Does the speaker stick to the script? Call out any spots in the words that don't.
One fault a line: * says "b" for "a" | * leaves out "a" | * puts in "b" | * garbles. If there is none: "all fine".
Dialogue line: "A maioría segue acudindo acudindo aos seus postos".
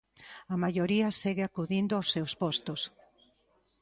* leaves out "acudindo"